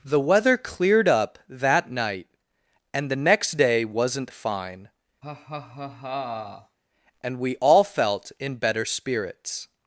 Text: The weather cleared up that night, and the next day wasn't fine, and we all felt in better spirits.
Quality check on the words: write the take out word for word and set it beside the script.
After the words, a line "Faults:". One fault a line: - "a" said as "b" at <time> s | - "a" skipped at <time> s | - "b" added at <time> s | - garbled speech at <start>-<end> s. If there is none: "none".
The weather cleared up that night, and the next day wasn't fine, and we all felt in better spirits.
Faults:
none